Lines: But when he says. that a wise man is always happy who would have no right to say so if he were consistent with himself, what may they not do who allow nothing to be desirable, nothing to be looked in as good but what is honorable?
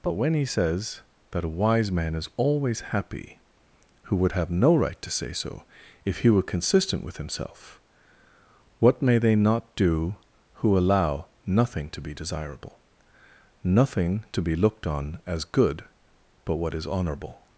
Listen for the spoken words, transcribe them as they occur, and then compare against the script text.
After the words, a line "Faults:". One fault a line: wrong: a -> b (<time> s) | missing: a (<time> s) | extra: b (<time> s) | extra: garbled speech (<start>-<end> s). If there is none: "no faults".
But when he says. that a wise man is always happy who would have no right to say so if he were consistent with himself, what may they not do who allow nothing to be desirable, nothing to be looked on as good but what is honorable?
Faults:
wrong: in -> on (14.8 s)